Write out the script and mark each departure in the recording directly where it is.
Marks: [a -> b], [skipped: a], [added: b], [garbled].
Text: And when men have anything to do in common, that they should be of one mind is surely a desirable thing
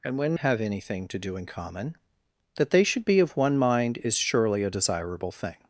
And when [skipped: men] have anything to do in common, that they should be of one mind is surely a desirable thing